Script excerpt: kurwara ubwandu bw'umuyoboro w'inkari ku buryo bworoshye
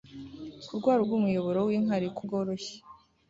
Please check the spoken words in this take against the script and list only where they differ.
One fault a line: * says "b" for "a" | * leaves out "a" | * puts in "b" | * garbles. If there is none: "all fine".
* leaves out "ubwandu"
* leaves out "buryo"